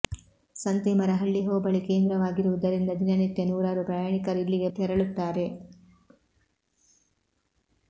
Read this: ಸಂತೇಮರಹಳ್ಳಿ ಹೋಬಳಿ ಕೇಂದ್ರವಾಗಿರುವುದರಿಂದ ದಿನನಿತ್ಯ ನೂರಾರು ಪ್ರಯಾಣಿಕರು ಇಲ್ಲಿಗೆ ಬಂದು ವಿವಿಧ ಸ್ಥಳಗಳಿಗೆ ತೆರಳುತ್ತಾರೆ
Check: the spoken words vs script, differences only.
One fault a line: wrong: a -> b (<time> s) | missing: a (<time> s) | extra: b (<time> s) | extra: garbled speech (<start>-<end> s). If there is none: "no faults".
missing: ಬಂದು ವಿವಿಧ ಸ್ಥಳಗಳಿಗೆ (4.7 s)